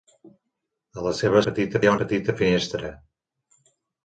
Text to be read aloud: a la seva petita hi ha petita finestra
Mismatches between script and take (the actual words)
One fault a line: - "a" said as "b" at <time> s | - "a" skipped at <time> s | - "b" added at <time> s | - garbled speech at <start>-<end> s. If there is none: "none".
none